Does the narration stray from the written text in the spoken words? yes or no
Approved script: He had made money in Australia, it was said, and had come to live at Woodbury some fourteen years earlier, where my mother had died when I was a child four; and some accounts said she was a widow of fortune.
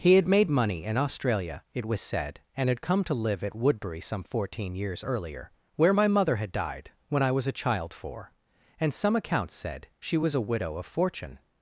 no